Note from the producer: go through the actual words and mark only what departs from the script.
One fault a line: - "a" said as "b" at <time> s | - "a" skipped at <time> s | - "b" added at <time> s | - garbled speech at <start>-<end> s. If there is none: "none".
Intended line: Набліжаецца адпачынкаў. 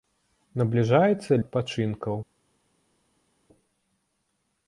none